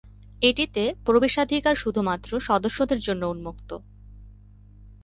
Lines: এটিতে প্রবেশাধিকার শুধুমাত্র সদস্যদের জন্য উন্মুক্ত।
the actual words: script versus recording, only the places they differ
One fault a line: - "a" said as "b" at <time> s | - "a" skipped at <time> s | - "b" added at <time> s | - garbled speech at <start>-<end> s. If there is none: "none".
none